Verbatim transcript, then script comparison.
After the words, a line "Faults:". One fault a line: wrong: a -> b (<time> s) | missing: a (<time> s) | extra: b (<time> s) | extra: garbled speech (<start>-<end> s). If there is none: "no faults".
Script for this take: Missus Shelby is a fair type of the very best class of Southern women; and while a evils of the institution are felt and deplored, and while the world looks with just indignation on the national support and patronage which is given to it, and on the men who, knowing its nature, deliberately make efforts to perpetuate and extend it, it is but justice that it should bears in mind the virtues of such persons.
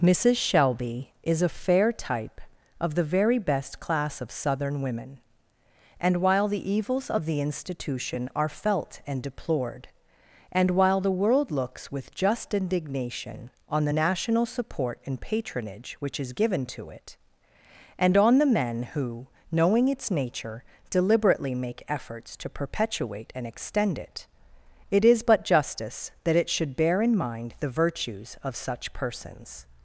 Missus Shelby is a fair type of the very best class of Southern women; and while the evils of the institution are felt and deplored, and while the world looks with just indignation on the national support and patronage which is given to it, and on the men who, knowing its nature, deliberately make efforts to perpetuate and extend it, it is but justice that it should bear in mind the virtues of such persons.
Faults:
wrong: a -> the (6.5 s)
wrong: bears -> bear (26.8 s)